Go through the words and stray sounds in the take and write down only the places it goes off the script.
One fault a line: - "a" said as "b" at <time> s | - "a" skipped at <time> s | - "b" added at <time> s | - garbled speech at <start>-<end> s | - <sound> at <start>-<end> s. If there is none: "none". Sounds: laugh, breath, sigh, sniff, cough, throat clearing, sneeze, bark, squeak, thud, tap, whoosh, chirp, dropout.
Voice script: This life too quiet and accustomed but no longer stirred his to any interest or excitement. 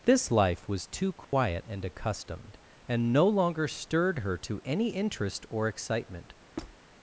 - "was" added at 0.7 s
- dropout at 1.2-1.3 s
- "but" said as "and" at 2.9 s
- "his" said as "her" at 4.2 s
- squeak at 6.6-6.8 s